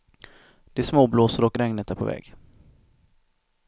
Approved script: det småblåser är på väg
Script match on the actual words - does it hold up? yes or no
no